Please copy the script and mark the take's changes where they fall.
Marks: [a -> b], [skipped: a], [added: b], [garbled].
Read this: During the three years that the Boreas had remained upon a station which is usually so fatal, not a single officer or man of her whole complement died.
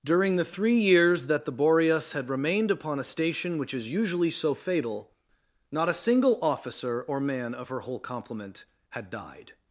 During the three years that the Boreas had remained upon a station which is usually so fatal, not a single officer or man of her whole complement [added: had] died.